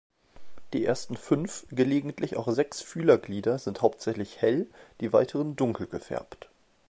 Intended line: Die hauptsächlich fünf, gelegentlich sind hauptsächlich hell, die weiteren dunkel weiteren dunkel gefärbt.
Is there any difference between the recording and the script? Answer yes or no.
yes